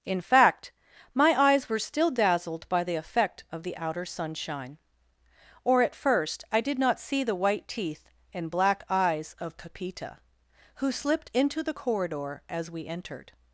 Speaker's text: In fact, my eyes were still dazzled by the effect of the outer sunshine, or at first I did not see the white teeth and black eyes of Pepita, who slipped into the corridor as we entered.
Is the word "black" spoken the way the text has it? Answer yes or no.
yes